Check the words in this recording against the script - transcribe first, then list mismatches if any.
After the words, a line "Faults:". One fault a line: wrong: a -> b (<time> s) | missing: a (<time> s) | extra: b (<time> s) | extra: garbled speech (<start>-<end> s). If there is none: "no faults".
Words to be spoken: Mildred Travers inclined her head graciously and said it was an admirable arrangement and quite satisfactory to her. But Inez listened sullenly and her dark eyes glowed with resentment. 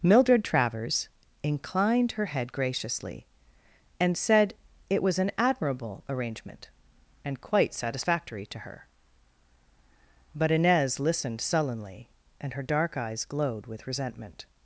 Mildred Travers inclined her head graciously and said it was an admirable arrangement and quite satisfactory to her. But Inez listened sullenly and her dark eyes glowed with resentment.
Faults:
no faults